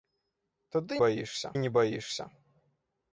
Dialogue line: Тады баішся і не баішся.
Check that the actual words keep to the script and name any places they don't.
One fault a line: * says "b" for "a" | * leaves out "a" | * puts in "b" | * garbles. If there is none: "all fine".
all fine